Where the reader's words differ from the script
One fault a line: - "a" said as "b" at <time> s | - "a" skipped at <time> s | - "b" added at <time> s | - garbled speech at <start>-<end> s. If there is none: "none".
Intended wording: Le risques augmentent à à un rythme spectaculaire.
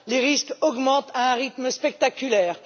- "Le" said as "Les" at 0.1 s
- "à" skipped at 1.3 s